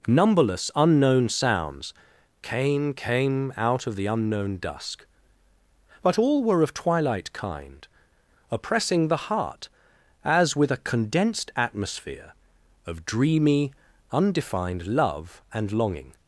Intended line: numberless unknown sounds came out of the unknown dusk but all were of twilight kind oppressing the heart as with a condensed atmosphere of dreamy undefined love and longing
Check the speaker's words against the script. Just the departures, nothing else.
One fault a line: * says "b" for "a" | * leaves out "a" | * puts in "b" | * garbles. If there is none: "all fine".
* puts in "came"